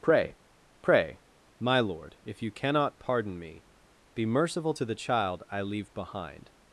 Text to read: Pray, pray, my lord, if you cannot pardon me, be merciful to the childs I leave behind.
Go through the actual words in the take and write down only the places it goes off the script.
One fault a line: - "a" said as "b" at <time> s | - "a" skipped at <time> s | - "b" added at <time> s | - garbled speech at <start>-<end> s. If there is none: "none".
- "childs" said as "child" at 4.9 s